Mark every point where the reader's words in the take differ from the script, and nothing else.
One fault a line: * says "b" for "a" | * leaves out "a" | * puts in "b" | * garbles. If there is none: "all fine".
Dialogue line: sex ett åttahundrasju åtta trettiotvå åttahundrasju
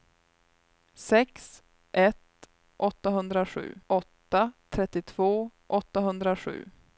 all fine